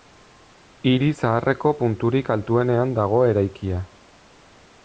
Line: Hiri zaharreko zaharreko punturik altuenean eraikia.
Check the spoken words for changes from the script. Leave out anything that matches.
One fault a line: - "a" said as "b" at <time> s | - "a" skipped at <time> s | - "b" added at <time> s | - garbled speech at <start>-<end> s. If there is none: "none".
- "zaharreko" skipped at 1.7 s
- "dago" added at 3.0 s